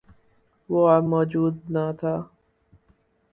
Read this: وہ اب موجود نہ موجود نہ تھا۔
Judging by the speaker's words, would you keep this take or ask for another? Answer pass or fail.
fail